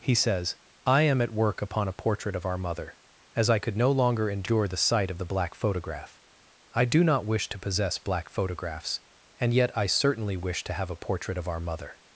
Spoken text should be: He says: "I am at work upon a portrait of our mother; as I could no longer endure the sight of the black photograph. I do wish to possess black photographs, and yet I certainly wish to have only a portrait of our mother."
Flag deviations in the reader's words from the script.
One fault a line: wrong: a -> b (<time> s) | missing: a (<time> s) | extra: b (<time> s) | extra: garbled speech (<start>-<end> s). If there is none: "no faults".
extra: not (7.0 s)
missing: only (10.9 s)